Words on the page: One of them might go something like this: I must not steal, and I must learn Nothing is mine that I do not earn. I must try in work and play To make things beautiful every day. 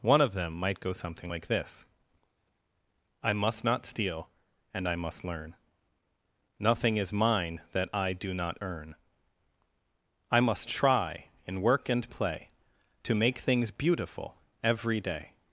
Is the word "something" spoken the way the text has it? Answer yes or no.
yes